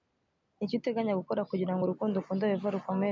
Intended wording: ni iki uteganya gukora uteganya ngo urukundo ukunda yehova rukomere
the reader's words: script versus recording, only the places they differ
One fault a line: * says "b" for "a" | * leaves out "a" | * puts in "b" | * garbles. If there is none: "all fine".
* says "kugira" for "uteganya"